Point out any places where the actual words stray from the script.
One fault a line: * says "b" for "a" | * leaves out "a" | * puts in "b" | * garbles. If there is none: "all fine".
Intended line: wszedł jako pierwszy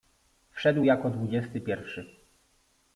* puts in "dwudziesty"